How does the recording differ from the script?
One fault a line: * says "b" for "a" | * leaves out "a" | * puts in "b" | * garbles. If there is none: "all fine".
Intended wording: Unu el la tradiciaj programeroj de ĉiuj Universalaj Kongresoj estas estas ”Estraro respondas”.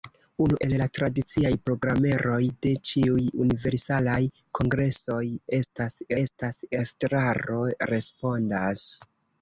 all fine